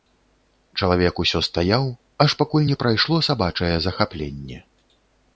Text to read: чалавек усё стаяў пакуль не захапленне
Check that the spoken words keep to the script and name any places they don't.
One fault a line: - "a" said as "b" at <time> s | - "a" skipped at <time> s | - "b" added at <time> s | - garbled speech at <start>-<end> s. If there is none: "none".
- "аж" added at 2.2 s
- "прайшло сабачае" added at 2.8 s